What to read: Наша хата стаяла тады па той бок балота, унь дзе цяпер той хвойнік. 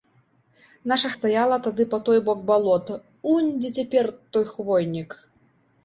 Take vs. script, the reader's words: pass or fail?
fail